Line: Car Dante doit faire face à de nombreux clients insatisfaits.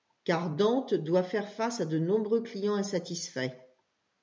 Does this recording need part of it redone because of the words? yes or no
no